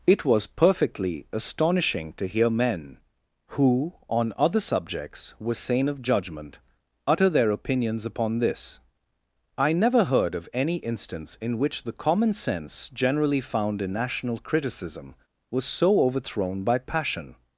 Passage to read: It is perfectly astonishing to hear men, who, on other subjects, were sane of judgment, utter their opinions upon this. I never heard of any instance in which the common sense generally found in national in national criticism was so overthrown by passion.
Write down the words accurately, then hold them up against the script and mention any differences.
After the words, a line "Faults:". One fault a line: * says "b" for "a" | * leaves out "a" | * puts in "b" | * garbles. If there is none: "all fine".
It was perfectly astonishing to hear men, who, on other subjects, were sane of judgment, utter their opinions upon this. I never heard of any instance in which the common sense generally found in national criticism was so overthrown by passion.
Faults:
* says "was" for "is"
* leaves out "in national"